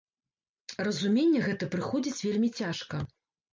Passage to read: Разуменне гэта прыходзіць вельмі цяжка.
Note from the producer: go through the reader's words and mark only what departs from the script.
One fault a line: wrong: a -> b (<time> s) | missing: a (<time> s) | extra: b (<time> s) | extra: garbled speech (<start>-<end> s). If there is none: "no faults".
no faults